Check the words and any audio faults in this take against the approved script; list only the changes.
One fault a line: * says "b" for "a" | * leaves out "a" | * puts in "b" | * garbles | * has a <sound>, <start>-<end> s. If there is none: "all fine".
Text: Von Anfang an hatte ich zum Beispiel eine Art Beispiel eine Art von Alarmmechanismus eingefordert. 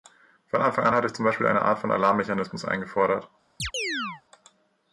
* leaves out "Beispiel eine Art"
* has a chirp, 3.6-4.2 s